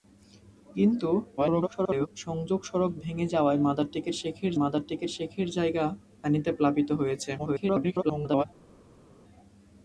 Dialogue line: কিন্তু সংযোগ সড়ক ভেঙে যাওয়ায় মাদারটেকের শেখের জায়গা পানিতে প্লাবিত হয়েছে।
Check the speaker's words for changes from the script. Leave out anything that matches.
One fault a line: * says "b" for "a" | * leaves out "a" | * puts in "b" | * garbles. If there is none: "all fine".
* garbles
* puts in "মাদারটেকের শেখের"
* garbles